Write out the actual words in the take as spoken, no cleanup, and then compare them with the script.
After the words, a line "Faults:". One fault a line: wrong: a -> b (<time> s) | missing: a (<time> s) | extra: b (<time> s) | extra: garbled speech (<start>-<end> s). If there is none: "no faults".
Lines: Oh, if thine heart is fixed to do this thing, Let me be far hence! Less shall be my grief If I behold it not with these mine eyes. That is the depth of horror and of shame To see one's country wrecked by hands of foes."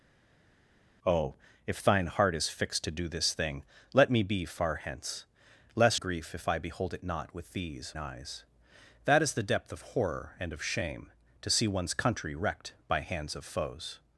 Oh, if thine heart is fixed to do this thing, Let me be far hence! Less grief If I behold it not with these eyes. That is the depth of horror and of shame To see one's country wrecked by hands of foes."
Faults:
missing: shall be my (5.9 s)
missing: mine (7.9 s)